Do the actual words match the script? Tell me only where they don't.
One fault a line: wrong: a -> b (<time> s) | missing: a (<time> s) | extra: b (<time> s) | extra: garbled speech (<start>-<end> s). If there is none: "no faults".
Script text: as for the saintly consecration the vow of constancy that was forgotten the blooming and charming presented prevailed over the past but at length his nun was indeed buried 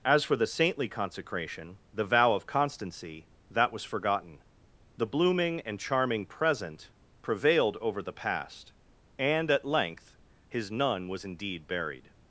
wrong: presented -> present (6.2 s)
wrong: but -> and (9.2 s)